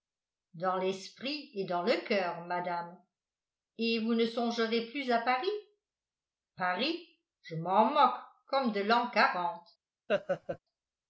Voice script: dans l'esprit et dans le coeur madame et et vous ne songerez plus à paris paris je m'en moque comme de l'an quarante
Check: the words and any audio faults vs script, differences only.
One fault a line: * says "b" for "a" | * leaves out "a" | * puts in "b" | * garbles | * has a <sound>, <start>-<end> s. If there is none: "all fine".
* leaves out "et"
* has a laugh, 10.1-10.6 s